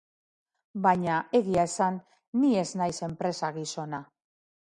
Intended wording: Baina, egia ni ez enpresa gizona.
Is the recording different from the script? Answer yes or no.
yes